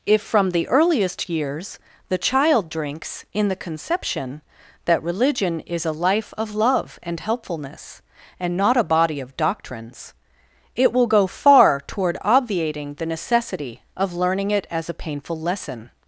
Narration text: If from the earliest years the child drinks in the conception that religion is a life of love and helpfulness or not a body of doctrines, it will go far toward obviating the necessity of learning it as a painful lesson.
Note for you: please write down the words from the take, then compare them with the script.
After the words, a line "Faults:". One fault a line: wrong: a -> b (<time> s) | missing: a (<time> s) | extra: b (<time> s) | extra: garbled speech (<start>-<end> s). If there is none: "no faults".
If from the earliest years the child drinks in the conception that religion is a life of love and helpfulness and not a body of doctrines, it will go far toward obviating the necessity of learning it as a painful lesson.
Faults:
wrong: or -> and (8.4 s)